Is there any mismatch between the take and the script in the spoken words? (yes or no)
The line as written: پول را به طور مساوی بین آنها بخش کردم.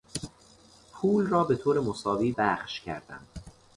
yes